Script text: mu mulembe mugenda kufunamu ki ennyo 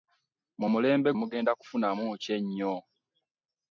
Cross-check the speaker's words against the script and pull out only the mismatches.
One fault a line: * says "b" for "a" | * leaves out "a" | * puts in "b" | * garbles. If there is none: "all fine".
all fine